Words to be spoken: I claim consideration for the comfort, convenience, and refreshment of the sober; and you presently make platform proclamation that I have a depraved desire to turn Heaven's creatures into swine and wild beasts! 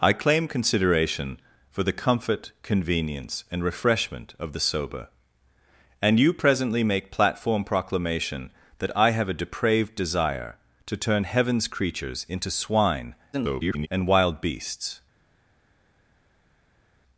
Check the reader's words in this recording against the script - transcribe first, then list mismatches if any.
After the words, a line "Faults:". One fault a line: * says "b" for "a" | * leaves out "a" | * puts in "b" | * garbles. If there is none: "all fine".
I claim consideration for the comfort, convenience, and refreshment of the sober; and you presently make platform proclamation that I have a depraved desire to turn Heaven's creatures into swine [garbled] and wild beasts!
Faults:
* garbles